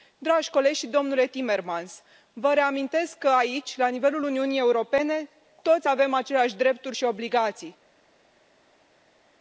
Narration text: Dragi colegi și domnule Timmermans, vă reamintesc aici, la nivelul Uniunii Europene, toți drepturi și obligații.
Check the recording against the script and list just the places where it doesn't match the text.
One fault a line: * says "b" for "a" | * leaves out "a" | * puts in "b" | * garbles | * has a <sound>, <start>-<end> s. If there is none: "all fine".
* puts in "că"
* puts in "avem aceleași"